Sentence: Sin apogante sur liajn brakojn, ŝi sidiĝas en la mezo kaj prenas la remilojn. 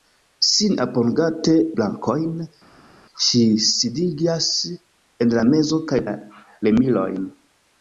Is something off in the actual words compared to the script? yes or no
yes